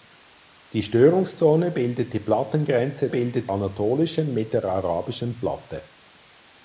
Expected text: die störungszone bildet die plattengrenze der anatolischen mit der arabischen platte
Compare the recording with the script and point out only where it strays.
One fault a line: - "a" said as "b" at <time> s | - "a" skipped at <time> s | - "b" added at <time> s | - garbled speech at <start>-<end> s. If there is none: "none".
- "der" said as "bildet" at 3.1 s